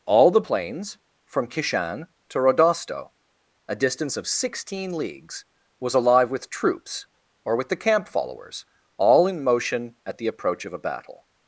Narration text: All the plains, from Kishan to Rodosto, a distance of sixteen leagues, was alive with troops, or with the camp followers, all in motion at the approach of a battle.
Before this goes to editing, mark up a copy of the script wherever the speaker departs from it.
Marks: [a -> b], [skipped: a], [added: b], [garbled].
All the plains, from Kishan to Rodosto, a distance of sixteen leagues, was alive with troops, or with the camp followers, all in motion at the approach of a battle.